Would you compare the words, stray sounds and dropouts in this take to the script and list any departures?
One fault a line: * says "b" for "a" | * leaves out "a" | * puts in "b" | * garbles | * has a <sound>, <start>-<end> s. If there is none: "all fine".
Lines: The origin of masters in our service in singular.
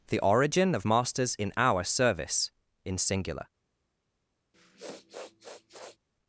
* has a sniff, 4.5-6.0 s